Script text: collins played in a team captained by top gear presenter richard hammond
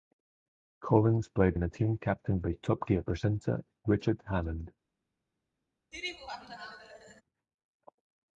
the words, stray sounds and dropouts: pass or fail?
fail